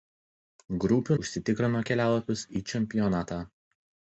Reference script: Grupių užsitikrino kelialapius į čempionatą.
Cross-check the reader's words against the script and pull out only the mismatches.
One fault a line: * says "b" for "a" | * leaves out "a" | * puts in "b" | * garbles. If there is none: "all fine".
all fine